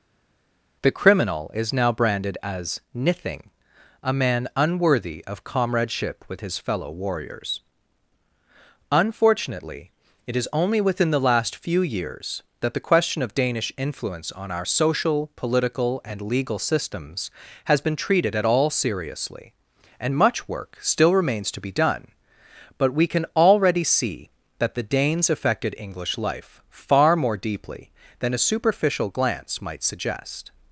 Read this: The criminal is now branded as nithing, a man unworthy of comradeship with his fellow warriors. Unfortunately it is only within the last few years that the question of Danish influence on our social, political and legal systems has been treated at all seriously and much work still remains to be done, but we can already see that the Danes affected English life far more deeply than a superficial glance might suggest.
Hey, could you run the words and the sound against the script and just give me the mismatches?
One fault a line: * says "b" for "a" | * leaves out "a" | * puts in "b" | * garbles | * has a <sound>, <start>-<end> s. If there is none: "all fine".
all fine